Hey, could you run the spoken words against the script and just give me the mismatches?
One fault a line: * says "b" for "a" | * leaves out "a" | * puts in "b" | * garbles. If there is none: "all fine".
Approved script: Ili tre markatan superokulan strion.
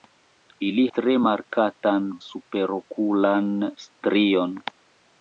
all fine